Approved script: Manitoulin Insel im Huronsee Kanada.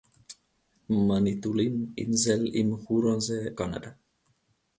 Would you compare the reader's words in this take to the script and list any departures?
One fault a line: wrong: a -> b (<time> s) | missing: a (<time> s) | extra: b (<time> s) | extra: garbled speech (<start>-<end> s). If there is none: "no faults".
no faults